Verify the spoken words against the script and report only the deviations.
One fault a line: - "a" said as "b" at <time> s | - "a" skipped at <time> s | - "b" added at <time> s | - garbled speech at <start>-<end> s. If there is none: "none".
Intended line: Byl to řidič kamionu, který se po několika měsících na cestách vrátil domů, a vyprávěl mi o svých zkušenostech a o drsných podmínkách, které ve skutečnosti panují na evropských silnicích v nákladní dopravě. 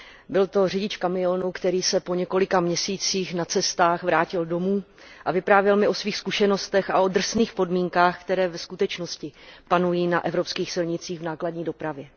none